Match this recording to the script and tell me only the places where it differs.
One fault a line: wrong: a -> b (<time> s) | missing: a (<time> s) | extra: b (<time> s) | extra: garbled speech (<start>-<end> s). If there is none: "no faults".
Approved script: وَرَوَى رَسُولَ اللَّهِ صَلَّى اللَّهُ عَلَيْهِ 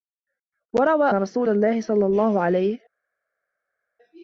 no faults